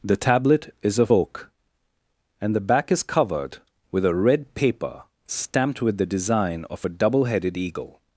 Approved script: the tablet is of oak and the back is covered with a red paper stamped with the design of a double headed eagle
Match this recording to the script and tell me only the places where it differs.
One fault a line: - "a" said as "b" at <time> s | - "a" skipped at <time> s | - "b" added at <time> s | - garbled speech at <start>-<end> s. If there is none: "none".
none